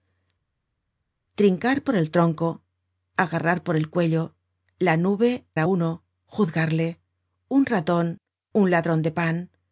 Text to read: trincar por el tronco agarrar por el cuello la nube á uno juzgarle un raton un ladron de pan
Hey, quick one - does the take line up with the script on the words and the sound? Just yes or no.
yes